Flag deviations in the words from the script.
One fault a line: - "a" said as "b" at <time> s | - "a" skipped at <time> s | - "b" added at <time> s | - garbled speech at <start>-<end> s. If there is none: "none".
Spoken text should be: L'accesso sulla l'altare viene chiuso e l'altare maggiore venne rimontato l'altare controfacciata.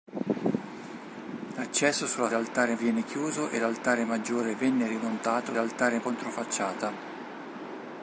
none